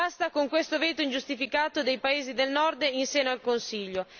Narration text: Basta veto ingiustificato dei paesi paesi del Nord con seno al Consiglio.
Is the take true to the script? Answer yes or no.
no